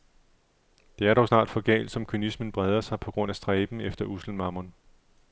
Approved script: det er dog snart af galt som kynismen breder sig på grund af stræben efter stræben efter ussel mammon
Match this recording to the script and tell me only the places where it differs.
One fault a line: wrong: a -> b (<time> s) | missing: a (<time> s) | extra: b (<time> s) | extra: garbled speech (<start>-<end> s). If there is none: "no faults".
wrong: af -> for (1.5 s)
missing: stræben efter (4.1 s)